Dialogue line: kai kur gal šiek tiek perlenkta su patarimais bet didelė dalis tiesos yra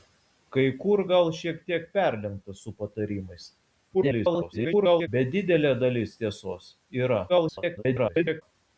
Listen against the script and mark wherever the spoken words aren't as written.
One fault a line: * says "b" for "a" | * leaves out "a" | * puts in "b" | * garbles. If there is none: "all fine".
* garbles
* garbles